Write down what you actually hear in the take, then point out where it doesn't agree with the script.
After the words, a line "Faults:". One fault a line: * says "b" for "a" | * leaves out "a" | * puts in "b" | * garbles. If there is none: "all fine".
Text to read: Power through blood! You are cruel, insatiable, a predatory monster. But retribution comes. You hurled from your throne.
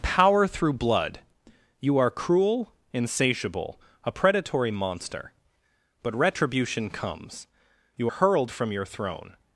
Power through blood! You are cruel, insatiable, a predatory monster. But retribution comes. You hurled from your throne.
Faults:
all fine